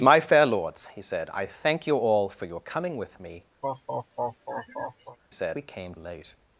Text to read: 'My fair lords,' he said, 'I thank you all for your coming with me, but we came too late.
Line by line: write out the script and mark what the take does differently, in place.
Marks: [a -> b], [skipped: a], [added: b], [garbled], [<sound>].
'My fair lords,' he said, 'I thank you all for your coming with me, [laugh] [but -> said] we came [skipped: too] late.